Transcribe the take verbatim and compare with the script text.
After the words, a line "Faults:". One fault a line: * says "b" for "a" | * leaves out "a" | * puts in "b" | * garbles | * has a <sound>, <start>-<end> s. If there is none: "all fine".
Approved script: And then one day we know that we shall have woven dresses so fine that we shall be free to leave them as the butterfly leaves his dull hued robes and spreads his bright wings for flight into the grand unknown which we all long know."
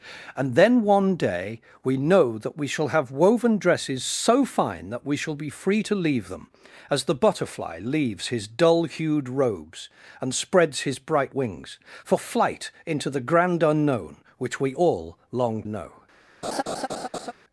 And then one day we know that we shall have woven dresses so fine that we shall be free to leave them as the butterfly leaves his dull hued robes and spreads his bright wings for flight into the grand unknown which we all long know."
Faults:
* has a laugh, 16.4-17.3 s